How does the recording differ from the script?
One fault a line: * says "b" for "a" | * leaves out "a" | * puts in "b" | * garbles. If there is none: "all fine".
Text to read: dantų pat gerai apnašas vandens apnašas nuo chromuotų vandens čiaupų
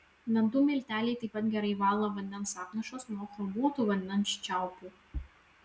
* puts in "milteliai taip"
* says "valo" for "apnašas"